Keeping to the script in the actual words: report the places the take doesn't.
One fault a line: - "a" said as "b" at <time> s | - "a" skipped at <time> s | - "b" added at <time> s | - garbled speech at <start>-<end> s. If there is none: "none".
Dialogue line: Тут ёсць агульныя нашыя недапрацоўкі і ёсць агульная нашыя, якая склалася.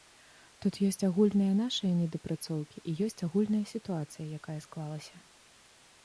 - "нашыя" said as "сітуацыя" at 3.7 s